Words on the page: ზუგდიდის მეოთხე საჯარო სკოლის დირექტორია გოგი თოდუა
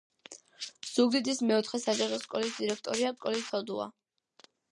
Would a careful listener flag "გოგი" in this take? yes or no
yes